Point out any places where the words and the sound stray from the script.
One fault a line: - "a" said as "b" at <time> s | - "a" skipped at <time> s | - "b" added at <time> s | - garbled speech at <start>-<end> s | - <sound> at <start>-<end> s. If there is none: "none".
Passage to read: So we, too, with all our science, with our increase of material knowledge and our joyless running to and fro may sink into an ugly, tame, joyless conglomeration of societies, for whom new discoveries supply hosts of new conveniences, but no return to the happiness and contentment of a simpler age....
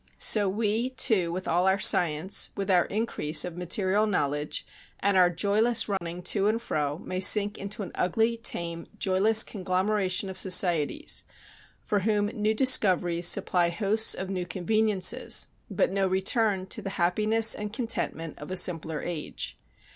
- dropout at 6.0-6.0 s